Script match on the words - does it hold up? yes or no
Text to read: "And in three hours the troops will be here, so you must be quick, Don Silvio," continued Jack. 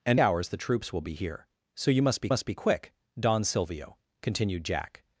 no